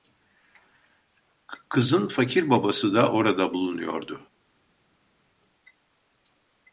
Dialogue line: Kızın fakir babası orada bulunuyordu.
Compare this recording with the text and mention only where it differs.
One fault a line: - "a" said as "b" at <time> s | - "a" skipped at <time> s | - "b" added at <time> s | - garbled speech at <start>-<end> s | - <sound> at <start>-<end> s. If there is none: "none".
- "da" added at 2.9 s